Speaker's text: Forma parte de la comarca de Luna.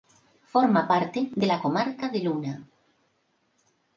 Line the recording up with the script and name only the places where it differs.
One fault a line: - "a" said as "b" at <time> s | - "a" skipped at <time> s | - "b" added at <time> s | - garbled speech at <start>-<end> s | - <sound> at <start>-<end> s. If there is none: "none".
none